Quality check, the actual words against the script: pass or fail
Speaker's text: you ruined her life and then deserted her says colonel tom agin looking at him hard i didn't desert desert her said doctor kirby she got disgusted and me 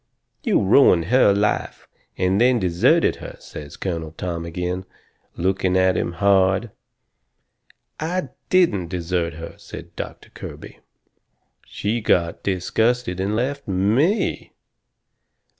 fail